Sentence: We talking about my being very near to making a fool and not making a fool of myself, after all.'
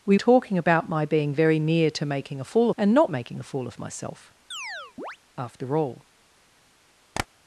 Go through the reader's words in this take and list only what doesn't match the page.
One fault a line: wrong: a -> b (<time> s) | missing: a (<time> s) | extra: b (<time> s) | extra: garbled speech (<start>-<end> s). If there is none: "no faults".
no faults